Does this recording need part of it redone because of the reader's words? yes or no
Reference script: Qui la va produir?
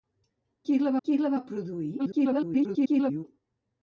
yes